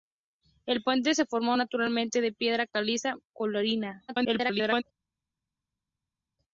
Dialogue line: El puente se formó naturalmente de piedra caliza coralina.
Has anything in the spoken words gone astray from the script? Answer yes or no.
yes